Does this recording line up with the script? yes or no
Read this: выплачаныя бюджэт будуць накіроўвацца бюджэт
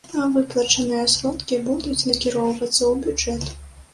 no